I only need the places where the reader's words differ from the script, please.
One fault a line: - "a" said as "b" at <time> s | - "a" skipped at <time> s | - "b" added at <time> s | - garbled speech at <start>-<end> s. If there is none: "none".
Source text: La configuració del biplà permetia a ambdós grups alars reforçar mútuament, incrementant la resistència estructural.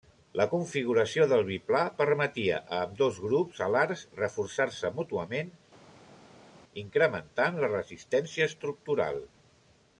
- "se" added at 4.8 s